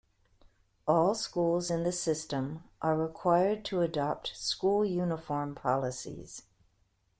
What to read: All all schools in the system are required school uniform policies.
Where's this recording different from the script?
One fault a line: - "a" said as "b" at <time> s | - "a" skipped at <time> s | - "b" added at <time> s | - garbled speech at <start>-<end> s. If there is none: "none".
- "all" skipped at 1.1 s
- "to adopt" added at 3.7 s